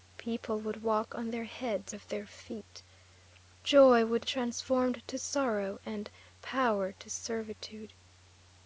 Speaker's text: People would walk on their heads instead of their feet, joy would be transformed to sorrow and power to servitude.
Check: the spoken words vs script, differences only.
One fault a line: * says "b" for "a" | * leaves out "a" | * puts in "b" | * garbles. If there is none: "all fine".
* leaves out "instead"
* leaves out "be"